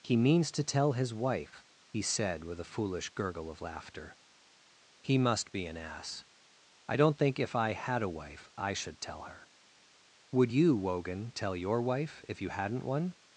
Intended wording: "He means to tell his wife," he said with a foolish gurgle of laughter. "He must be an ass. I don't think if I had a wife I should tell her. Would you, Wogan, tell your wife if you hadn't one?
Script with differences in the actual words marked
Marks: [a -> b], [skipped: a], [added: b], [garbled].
"He means to tell his wife," he said with a foolish gurgle of laughter. "He must be an ass. I don't think if I had a wife I should tell her. Would you, Wogan, tell your wife if you hadn't one?